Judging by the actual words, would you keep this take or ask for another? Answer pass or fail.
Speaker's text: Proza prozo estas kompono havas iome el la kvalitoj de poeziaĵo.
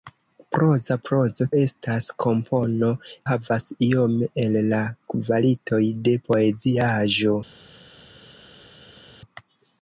pass